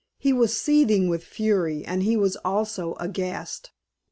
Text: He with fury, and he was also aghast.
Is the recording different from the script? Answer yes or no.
yes